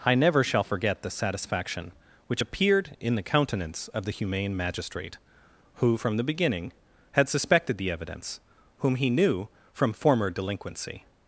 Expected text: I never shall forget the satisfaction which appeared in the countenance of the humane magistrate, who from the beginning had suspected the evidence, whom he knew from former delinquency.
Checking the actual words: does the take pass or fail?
pass